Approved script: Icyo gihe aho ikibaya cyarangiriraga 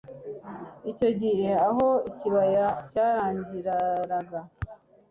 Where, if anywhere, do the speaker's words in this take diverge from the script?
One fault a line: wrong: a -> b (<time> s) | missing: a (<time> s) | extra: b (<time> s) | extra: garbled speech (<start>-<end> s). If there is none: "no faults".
no faults